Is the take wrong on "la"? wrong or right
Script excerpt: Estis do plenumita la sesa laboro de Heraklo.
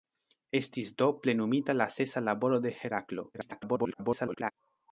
right